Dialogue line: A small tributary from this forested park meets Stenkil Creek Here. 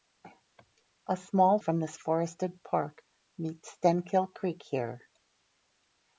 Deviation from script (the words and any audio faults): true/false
true